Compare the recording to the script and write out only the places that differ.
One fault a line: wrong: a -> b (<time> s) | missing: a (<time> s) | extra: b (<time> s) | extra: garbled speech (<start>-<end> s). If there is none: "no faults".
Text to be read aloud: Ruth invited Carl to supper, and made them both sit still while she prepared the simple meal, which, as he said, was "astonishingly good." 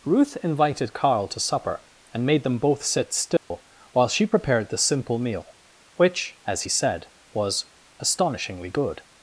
no faults